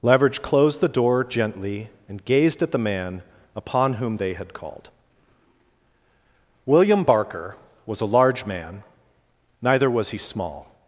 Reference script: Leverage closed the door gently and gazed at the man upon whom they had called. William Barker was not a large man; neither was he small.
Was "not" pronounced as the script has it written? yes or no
no